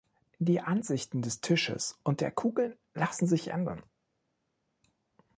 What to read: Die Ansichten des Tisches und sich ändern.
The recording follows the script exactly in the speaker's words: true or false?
false